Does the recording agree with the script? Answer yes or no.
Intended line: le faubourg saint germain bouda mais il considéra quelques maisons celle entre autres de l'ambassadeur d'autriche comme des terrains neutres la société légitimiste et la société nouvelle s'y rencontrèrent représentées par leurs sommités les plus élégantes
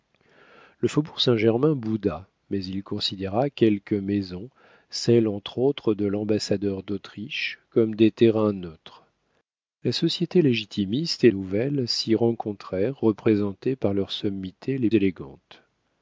no